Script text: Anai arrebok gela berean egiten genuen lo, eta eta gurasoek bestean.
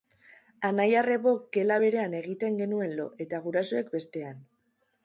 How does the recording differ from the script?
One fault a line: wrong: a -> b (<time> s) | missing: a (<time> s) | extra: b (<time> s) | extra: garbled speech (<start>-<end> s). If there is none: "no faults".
missing: eta (3.5 s)